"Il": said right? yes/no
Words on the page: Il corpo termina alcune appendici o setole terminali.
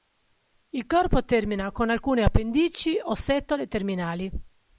yes